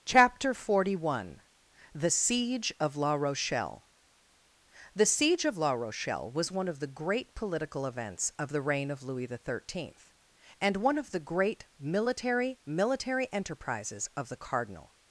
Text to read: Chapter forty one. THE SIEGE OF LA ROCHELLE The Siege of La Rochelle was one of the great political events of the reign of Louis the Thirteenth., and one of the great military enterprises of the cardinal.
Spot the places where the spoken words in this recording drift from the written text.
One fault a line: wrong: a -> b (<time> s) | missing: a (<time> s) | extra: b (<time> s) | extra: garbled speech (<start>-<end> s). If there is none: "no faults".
extra: military (12.7 s)